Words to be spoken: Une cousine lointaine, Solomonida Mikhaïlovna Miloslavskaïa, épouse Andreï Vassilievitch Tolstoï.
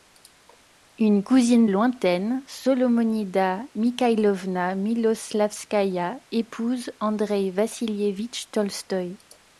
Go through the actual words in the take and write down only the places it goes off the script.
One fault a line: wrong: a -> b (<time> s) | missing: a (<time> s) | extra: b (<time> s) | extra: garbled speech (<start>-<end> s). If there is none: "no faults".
no faults